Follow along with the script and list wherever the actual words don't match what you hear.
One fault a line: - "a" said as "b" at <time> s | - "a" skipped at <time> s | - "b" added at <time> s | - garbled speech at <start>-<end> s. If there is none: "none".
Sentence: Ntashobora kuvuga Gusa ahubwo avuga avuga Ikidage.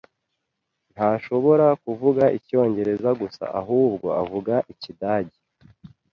- "Icyongereza" added at 2.4 s
- "avuga" skipped at 4.5 s